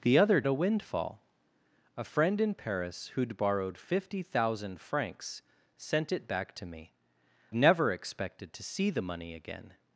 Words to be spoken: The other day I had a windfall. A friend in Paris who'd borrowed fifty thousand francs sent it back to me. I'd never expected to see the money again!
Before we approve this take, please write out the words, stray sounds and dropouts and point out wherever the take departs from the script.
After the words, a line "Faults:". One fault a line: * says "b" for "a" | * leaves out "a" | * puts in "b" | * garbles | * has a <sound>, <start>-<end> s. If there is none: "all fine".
The other a windfall. A friend in Paris who'd borrowed fifty thousand francs sent it back to me. Never expected to see the money again!
Faults:
* leaves out "day I had"
* leaves out "I'd"